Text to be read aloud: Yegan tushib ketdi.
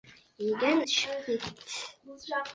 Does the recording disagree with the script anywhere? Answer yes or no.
no